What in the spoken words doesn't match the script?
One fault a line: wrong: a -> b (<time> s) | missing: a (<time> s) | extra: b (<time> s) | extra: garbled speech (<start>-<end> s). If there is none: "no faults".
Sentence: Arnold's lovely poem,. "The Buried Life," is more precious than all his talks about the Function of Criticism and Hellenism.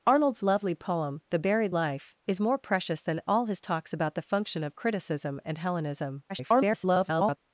extra: garbled speech (6.3-7.4 s)